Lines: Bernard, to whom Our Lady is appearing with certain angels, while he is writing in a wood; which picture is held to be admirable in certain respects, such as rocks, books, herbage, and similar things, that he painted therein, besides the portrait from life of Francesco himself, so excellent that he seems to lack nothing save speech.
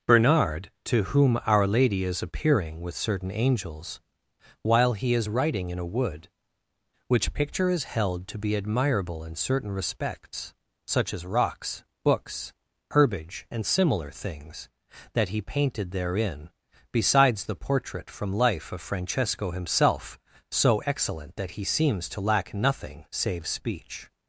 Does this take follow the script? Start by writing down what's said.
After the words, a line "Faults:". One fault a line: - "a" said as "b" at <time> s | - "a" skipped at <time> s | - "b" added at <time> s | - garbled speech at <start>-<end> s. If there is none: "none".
Bernard, to whom Our Lady is appearing with certain angels, while he is writing in a wood; which picture is held to be admirable in certain respects, such as rocks, books, herbage, and similar things, that he painted therein, besides the portrait from life of Francesco himself, so excellent that he seems to lack nothing save speech.
Faults:
none